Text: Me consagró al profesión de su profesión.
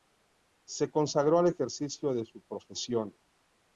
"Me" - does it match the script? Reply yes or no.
no